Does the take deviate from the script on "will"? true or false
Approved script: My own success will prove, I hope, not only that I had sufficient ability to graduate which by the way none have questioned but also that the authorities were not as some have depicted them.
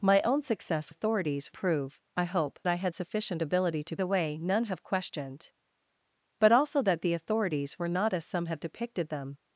true